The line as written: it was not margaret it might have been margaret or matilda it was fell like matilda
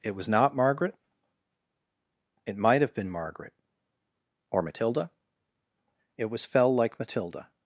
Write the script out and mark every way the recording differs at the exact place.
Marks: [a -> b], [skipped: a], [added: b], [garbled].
it was not margaret it might have been margaret or matilda it was fell like matilda